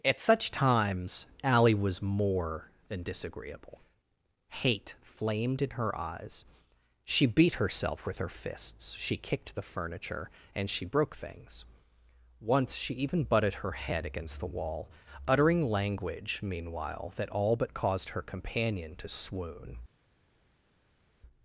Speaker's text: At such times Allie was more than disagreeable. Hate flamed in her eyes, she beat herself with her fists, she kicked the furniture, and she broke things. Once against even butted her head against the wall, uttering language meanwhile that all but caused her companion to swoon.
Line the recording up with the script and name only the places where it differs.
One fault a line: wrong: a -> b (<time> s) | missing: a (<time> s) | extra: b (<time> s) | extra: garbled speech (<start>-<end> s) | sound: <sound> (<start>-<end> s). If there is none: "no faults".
wrong: against -> she (12.8 s)